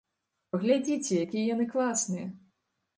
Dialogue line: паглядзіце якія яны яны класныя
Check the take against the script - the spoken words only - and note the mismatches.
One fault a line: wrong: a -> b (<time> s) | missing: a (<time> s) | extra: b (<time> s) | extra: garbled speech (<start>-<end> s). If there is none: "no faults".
missing: яны (1.7 s)